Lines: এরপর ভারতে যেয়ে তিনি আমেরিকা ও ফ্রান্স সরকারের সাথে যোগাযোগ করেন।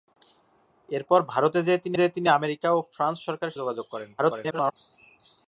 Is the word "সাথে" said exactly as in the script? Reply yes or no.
no